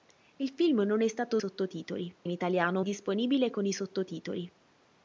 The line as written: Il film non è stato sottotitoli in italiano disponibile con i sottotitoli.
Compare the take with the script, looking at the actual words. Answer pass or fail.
pass